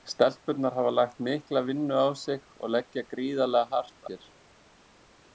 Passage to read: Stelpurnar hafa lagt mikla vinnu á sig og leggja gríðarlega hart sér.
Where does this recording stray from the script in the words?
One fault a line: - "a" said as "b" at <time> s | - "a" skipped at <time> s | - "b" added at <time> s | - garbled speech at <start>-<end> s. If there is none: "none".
none